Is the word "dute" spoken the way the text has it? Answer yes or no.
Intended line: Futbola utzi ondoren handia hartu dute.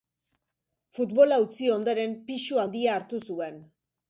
no